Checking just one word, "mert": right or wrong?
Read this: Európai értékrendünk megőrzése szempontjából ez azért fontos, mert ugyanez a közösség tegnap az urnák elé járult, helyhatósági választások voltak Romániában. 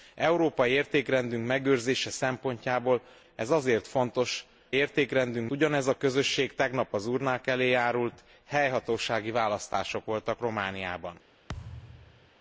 wrong